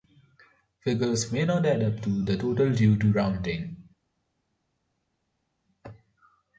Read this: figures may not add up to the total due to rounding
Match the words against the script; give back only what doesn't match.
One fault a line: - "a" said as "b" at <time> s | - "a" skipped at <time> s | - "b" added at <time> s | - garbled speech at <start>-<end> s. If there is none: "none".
none